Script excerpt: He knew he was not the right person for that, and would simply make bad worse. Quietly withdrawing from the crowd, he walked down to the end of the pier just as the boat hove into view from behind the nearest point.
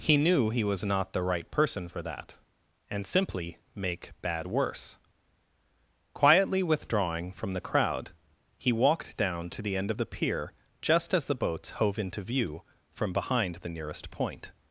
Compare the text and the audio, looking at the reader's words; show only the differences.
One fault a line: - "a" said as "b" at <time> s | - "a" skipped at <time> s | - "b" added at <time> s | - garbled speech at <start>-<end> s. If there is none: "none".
- "would" skipped at 3.0 s
- "boat" said as "boats" at 11.3 s